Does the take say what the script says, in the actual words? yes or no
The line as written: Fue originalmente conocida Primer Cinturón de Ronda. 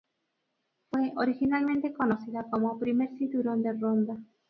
no